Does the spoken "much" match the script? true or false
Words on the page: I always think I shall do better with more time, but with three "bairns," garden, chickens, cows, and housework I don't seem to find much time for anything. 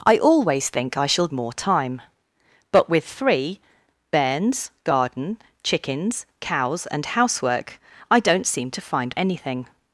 false